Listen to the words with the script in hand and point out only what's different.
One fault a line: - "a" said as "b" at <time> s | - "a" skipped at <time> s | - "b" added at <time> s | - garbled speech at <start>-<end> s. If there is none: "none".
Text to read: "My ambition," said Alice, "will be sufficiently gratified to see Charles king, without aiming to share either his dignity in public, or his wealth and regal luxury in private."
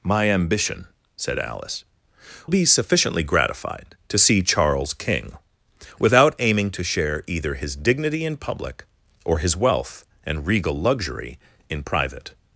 - "will" skipped at 1.8 s